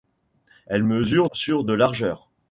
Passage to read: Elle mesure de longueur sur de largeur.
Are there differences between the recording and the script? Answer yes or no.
yes